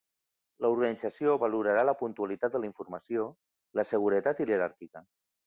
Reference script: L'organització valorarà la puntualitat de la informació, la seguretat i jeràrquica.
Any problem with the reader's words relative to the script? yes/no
no